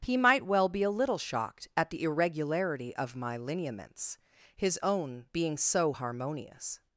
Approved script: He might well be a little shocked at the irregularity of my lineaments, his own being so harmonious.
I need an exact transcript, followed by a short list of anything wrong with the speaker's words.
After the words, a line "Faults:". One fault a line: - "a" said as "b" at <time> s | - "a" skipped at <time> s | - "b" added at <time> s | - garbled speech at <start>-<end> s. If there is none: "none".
He might well be a little shocked at the irregularity of my lineaments, his own being so harmonious.
Faults:
none